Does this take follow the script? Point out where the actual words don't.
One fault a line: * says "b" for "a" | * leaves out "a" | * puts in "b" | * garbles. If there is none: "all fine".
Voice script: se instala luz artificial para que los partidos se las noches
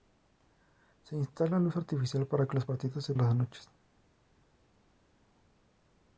all fine